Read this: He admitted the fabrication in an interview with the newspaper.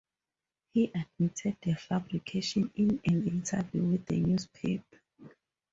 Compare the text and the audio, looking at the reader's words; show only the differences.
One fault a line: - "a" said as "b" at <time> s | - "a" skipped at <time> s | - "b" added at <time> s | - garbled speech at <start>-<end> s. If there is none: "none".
none